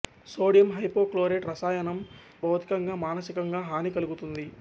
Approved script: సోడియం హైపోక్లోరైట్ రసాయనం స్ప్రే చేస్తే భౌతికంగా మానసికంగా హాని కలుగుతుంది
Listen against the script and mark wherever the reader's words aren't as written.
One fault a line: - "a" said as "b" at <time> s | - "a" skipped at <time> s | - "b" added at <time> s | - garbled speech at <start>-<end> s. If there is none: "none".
- "స్ప్రే చేస్తే" skipped at 2.0 s